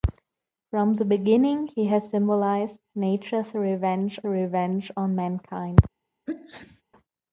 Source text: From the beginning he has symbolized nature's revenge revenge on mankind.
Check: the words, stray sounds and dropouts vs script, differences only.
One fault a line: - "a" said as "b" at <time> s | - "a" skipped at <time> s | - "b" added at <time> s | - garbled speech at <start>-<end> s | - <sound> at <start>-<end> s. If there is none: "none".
- sneeze at 6.3-6.8 s